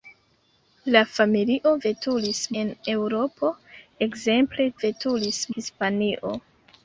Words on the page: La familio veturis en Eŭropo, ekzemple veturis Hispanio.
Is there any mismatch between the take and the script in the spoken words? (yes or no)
no